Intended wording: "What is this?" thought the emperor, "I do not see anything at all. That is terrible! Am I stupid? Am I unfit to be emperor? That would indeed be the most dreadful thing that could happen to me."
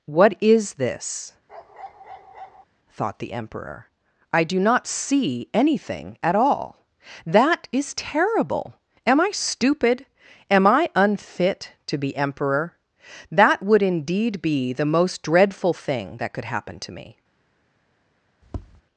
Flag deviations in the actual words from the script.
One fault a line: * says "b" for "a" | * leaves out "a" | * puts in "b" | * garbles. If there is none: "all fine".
all fine